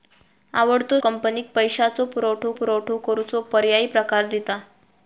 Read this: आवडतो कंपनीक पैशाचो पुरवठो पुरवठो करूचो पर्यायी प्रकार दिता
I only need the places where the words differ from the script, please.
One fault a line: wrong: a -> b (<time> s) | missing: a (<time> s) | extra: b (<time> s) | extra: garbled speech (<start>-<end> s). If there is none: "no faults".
no faults